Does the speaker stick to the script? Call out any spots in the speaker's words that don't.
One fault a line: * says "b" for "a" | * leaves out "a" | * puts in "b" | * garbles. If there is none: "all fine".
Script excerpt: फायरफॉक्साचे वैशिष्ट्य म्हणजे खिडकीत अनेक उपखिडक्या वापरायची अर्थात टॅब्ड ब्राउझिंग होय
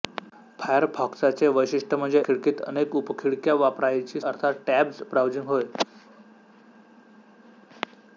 all fine